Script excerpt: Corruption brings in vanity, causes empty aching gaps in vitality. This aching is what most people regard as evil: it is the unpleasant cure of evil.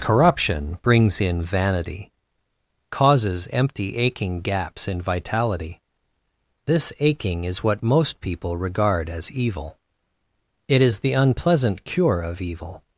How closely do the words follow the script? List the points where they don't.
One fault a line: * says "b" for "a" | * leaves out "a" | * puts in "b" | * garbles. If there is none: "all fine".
all fine